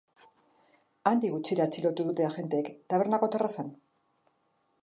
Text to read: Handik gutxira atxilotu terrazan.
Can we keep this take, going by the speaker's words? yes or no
no